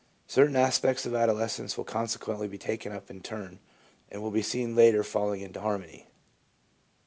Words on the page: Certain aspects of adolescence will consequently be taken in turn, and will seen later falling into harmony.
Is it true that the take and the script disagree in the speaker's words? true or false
true